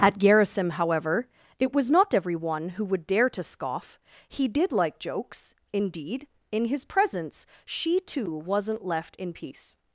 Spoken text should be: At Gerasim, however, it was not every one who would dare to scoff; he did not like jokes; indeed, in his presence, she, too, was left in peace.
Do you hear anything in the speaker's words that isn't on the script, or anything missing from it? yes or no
yes